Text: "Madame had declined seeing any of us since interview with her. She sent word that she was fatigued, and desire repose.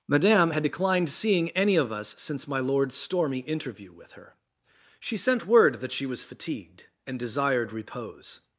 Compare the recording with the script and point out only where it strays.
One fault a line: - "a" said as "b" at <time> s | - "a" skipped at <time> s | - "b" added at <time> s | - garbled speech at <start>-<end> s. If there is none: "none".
- "my lord's stormy" added at 2.5 s
- "desire" said as "desired" at 7.2 s